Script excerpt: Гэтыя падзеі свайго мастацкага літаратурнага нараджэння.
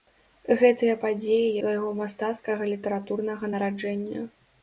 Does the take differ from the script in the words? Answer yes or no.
no